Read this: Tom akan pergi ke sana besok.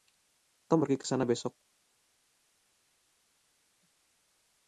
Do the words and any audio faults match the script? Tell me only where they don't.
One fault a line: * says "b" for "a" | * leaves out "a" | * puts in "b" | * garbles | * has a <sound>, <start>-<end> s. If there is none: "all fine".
* leaves out "akan"